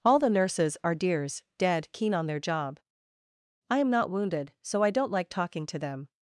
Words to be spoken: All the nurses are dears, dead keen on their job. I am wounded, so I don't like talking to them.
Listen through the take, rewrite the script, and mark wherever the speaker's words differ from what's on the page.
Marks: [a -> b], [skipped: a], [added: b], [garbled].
All the nurses are dears, dead keen on their job. I am [added: not] wounded, so I don't like talking to them.